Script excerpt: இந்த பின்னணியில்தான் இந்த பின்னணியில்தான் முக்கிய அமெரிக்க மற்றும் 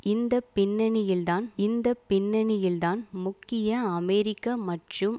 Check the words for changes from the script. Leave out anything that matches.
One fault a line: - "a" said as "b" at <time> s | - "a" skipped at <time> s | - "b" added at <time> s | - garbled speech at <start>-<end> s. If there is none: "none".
none